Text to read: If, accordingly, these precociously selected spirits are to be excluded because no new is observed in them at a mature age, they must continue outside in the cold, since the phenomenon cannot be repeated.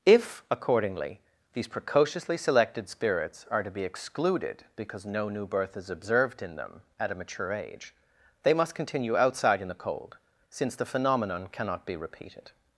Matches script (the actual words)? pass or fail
fail